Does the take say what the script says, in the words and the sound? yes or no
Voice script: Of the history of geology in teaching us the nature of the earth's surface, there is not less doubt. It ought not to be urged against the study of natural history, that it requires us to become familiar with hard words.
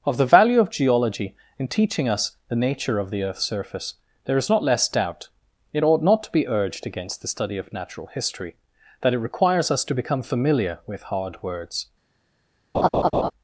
no